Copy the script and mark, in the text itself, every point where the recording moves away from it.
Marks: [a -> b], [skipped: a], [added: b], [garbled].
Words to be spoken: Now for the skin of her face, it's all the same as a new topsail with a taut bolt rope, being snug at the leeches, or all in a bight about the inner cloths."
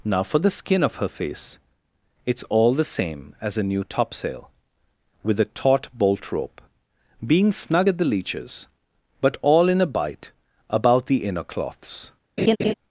Now for the skin of her face, it's all the same as a new topsail with a taut bolt rope, being snug at the leeches, [or -> but] all in a bight about the inner cloths."